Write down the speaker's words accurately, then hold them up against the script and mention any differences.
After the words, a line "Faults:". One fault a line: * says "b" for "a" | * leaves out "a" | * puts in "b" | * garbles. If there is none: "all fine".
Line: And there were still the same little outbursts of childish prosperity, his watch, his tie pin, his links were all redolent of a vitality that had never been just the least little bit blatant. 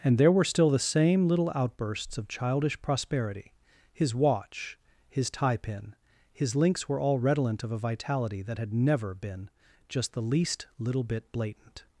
And there were still the same little outbursts of childish prosperity, his watch, his tie pin, his links were all redolent of a vitality that had never been just the least little bit blatant.
Faults:
all fine